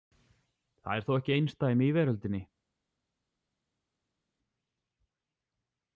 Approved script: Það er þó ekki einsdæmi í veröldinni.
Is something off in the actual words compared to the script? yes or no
no